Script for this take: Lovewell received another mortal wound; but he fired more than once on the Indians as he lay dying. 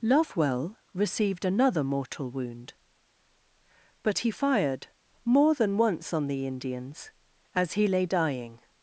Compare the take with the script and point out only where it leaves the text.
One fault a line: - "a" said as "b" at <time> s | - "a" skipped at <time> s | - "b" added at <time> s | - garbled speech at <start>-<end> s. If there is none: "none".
none